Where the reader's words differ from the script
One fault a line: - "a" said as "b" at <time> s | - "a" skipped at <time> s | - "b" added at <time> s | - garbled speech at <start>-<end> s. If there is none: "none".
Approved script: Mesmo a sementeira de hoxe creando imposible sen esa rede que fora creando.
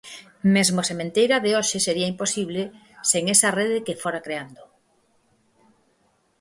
- "creando" said as "sería" at 1.9 s